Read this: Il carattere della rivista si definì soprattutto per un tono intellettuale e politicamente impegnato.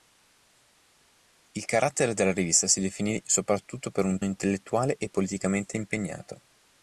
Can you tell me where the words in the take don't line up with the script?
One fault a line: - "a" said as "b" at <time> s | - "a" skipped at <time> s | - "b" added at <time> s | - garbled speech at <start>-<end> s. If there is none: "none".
- "tono" skipped at 4.2 s